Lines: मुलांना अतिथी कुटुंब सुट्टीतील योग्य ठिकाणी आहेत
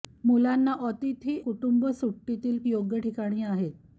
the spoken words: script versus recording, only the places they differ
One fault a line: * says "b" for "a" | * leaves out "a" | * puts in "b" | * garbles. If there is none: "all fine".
all fine